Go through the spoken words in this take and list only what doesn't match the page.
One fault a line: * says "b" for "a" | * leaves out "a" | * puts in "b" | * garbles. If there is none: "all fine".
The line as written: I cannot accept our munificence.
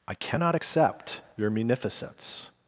* says "your" for "our"